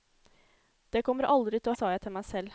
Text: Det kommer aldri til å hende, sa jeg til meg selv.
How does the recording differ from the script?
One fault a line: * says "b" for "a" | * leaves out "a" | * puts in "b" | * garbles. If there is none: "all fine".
* leaves out "hende"